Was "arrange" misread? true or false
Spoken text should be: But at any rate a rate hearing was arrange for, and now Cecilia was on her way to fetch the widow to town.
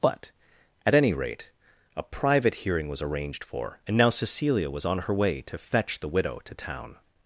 true